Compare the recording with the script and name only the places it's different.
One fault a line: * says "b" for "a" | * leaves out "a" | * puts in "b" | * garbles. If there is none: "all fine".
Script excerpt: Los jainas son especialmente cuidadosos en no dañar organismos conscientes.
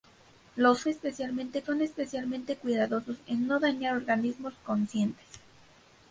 * says "especialmente" for "jainas"